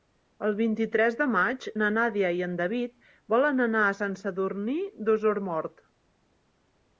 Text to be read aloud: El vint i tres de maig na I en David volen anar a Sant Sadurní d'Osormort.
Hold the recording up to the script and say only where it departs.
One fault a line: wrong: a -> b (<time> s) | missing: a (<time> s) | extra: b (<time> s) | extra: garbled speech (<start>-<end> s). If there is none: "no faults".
extra: Nàdia (2.0 s)